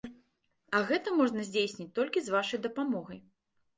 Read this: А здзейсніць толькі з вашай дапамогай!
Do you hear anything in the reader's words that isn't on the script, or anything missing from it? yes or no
yes